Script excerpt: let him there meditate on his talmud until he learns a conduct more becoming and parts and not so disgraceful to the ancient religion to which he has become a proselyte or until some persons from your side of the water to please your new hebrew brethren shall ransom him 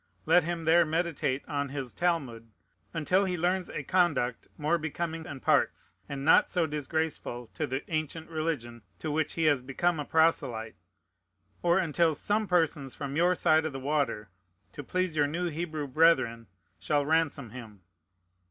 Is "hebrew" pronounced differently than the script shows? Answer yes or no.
no